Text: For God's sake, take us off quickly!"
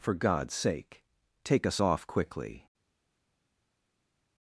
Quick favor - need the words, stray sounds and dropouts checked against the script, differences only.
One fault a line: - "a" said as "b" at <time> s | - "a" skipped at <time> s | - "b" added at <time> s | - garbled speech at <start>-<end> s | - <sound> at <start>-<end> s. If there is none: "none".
none